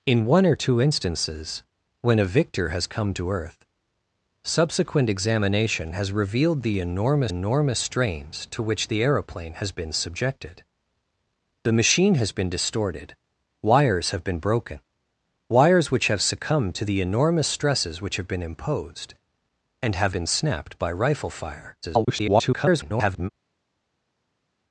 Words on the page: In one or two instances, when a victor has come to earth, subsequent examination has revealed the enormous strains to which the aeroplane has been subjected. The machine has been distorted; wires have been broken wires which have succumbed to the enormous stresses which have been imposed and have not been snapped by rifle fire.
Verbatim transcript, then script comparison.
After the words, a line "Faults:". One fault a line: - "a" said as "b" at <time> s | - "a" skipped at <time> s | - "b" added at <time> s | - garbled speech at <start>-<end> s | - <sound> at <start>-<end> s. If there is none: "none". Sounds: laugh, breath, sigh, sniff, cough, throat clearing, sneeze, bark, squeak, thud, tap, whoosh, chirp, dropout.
In one or two instances, when a victor has come to earth, subsequent examination has revealed the enormous enormous strains to which the aeroplane has been subjected. The machine has been distorted; wires have been broken wires which have succumbed to the enormous stresses which have been imposed and have been snapped by rifle fire. [garbled]
Faults:
- "enormous" added at 7.3 s
- "not" skipped at 20.2 s
- garbled speech at 21.8-23.3 s